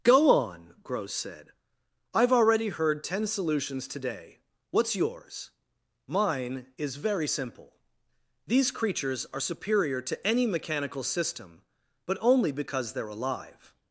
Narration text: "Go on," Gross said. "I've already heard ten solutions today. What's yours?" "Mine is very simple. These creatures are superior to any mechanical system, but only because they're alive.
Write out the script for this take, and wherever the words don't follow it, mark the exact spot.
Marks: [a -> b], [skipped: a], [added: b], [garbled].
"Go on," Gross said. "I've already heard ten solutions today. What's yours?" "Mine is very simple. These creatures are superior to any mechanical system, but only because they're alive.